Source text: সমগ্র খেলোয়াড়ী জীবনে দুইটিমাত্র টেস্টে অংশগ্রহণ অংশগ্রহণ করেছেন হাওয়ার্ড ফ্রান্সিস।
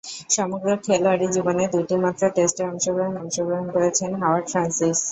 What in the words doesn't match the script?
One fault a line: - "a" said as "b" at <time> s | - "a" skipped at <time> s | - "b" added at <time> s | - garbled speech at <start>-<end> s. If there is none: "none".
none